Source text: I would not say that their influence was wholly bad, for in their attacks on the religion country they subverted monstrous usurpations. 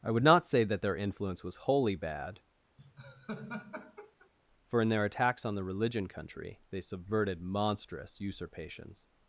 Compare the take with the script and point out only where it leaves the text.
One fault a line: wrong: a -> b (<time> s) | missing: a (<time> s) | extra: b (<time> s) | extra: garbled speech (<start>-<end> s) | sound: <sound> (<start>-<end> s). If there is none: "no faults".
sound: laugh (2.8-4.3 s)